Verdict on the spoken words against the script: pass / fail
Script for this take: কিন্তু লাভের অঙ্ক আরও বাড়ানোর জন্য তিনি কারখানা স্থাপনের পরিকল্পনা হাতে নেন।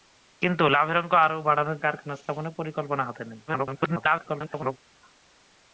fail